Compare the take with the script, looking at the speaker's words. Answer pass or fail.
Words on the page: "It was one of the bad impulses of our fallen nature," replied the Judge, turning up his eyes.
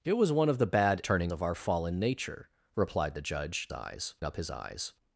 fail